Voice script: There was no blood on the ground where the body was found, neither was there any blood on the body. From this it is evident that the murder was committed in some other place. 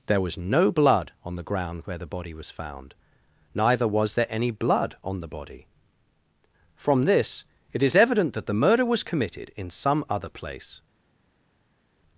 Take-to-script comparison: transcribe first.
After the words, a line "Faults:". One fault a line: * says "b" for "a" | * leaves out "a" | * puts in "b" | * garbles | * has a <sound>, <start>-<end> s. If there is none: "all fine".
There was no blood on the ground where the body was found, neither was there any blood on the body. From this it is evident that the murder was committed in some other place.
Faults:
all fine